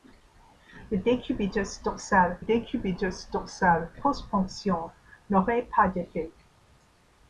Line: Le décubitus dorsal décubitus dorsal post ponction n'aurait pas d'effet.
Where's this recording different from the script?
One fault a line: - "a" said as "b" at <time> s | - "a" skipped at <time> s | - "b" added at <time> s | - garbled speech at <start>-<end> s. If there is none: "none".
none